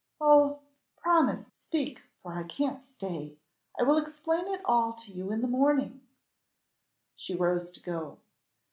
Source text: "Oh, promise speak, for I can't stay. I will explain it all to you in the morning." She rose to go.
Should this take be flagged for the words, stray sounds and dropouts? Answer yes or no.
no